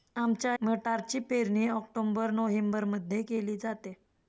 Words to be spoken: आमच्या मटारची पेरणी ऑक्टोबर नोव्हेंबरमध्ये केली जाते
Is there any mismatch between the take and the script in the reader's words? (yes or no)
no